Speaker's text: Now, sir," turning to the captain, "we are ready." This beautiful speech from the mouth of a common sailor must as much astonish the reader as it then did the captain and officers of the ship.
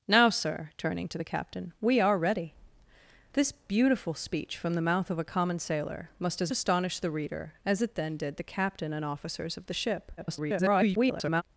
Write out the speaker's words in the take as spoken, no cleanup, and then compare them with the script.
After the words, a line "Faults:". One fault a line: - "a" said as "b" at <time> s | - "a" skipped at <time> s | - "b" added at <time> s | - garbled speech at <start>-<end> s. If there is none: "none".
Now, sir," turning to the captain, "we are ready." This beautiful speech from the mouth of a common sailor must as astonish the reader as it then did the captain and officers of the ship. [garbled]
Faults:
- "much" skipped at 6.5 s
- garbled speech at 10.2-11.4 s